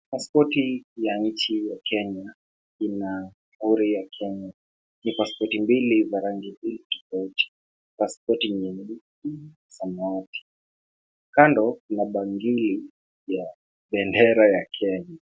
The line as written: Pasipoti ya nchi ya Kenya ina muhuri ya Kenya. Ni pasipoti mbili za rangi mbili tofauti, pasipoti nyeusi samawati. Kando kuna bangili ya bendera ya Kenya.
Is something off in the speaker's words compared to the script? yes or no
no